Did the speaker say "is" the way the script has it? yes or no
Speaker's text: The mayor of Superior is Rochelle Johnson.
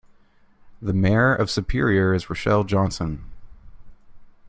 yes